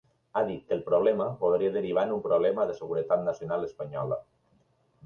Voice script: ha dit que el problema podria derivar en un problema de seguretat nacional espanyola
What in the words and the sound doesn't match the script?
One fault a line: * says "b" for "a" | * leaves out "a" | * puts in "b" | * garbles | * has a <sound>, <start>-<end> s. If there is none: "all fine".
all fine